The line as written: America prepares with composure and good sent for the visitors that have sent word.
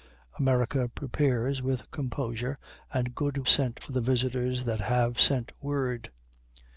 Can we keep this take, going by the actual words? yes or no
yes